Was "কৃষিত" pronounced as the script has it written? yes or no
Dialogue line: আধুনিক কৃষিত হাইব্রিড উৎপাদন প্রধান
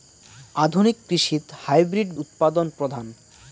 yes